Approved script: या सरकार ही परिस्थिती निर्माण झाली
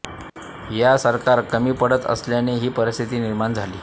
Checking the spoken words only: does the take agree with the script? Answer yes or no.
no